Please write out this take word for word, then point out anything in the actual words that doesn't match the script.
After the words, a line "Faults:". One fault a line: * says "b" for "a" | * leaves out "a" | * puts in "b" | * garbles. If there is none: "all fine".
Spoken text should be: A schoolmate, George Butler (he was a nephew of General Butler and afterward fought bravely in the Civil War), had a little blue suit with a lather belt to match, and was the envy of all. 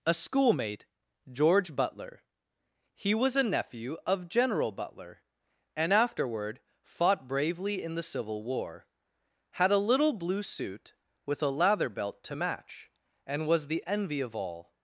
A schoolmate, George Butler (he was a nephew of General Butler and afterward fought bravely in the Civil War), had a little blue suit with a lather belt to match, and was the envy of all.
Faults:
all fine